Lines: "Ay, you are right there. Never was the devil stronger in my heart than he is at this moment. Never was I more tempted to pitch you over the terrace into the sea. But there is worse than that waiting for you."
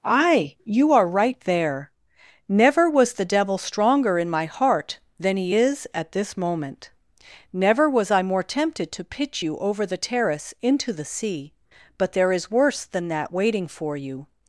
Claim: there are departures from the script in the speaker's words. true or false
false